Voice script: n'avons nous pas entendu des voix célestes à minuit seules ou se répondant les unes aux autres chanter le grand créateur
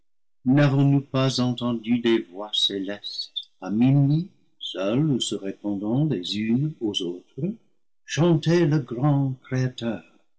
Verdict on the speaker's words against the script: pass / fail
pass